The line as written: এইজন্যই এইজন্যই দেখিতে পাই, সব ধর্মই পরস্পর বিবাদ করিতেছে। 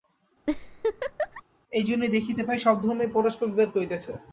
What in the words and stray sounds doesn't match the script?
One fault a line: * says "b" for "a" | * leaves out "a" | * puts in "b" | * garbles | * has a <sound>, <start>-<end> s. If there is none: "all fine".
* has a laugh, 0.5-1.4 s
* leaves out "এইজন্যই"